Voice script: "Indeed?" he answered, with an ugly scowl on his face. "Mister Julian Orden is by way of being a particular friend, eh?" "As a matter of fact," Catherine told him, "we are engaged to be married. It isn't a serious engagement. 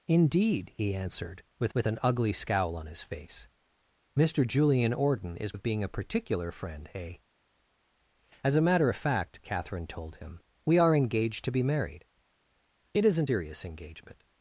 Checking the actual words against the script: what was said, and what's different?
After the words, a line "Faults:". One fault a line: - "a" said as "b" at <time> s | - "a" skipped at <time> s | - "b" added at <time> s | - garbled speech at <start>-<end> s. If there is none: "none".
"Indeed?" he answered, with with an ugly scowl on his face. "Mister Julian Orden is of being a particular friend, eh?" "As a matter of fact," Catherine told him, "we are engaged to be married. It isn't serious engagement.
Faults:
- "with" added at 1.7 s
- "by way" skipped at 5.5 s
- "a" skipped at 13.3 s